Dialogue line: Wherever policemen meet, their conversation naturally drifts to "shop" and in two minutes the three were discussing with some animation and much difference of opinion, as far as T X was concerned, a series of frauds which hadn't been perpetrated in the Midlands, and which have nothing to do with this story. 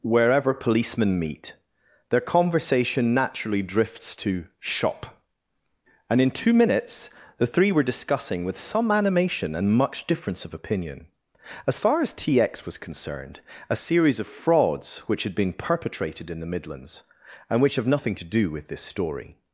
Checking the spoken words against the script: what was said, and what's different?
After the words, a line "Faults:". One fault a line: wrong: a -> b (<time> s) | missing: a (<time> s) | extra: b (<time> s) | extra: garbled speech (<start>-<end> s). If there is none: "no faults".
Wherever policemen meet, their conversation naturally drifts to "shop" and in two minutes the three were discussing with some animation and much difference of opinion, as far as T X was concerned, a series of frauds which had been perpetrated in the Midlands, and which have nothing to do with this story.
Faults:
wrong: hadn't -> had (15.2 s)